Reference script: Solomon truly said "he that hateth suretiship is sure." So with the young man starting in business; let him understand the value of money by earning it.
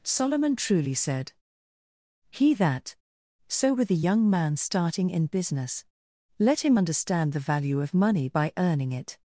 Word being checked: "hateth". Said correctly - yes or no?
no